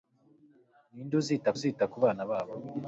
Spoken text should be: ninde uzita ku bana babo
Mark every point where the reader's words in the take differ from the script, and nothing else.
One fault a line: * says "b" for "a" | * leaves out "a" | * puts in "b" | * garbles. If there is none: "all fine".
* puts in "uzita"